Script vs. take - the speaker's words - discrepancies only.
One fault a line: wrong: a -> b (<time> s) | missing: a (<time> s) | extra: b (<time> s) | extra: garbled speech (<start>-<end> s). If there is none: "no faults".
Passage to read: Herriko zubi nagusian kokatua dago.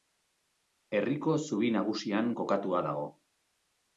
no faults